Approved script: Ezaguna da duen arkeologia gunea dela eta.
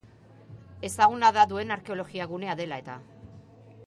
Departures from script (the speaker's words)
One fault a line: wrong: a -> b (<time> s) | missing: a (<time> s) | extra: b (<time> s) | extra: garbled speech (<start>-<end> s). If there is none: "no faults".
no faults